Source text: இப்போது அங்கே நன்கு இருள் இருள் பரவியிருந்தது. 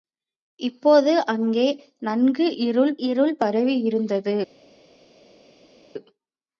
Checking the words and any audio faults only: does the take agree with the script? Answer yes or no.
yes